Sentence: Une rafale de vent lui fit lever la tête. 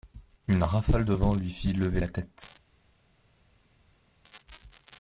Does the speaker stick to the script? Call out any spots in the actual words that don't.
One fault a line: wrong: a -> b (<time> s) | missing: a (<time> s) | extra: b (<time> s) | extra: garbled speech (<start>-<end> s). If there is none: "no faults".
no faults